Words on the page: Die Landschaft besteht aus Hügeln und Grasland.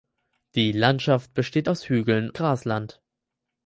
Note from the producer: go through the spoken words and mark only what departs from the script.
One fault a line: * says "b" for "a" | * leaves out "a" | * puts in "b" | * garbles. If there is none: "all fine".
* leaves out "und"